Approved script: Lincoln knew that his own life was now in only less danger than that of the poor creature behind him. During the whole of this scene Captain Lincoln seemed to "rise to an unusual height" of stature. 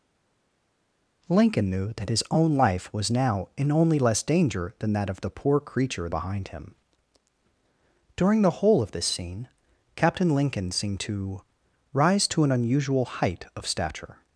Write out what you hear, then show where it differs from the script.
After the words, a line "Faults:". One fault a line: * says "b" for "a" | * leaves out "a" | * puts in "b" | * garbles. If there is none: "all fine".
Lincoln knew that his own life was now in only less danger than that of the poor creature behind him. During the whole of this scene Captain Lincoln seemed to "rise to an unusual height" of stature.
Faults:
all fine